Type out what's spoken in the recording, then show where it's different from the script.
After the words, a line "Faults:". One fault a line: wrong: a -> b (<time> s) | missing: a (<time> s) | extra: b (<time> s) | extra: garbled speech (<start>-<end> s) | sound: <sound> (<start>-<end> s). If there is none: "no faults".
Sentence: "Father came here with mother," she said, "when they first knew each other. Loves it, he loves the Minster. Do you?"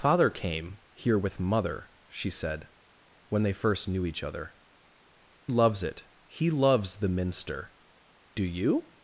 "Father came here with mother," she said, "when they first knew each other. Loves it, he loves the Minster. Do you?"
Faults:
no faults